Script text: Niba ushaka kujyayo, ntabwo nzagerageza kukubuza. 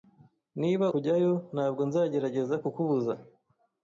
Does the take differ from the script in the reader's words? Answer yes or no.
yes